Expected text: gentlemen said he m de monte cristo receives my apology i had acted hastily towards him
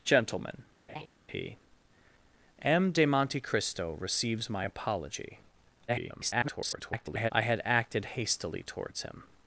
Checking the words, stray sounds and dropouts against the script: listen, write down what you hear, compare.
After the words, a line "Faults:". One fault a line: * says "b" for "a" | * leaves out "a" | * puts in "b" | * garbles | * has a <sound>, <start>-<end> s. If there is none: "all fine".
gentlemen he m de monte cristo receives my apology [garbled] i had acted hastily towards him
Faults:
* leaves out "said"
* has a laugh, 0.9-1.1 s
* garbles